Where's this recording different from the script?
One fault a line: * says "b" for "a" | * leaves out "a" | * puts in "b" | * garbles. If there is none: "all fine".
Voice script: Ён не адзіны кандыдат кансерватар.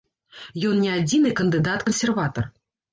all fine